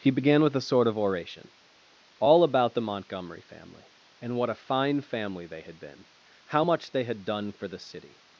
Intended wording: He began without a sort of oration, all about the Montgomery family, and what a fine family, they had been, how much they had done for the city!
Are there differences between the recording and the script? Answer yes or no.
yes